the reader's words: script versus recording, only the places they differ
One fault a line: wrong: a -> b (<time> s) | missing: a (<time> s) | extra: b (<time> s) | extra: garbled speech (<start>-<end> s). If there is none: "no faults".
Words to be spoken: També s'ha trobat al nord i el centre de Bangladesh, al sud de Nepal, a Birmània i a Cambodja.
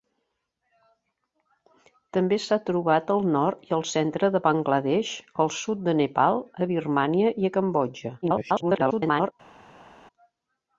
extra: garbled speech (8.2-9.3 s)